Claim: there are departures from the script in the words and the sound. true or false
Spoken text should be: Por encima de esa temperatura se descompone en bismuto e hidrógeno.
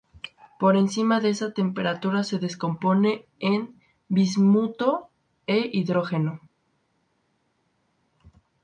false